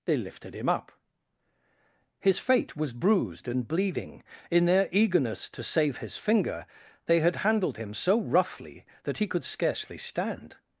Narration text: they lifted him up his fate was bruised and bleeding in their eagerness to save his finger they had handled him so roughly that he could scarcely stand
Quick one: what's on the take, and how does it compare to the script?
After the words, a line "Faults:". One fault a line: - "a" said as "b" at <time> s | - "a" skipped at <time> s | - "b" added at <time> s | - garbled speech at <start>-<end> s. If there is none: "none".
they lifted him up his fate was bruised and bleeding in their eagerness to save his finger they had handled him so roughly that he could scarcely stand
Faults:
none